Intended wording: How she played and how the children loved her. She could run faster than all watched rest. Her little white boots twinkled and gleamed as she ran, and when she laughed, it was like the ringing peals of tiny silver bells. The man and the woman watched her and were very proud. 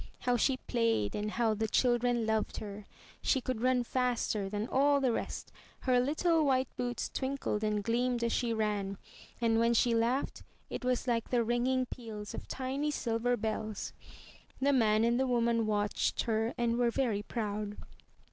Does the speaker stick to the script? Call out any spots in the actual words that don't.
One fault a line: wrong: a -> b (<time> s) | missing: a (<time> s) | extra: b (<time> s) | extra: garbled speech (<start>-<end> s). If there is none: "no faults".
wrong: watched -> the (5.0 s)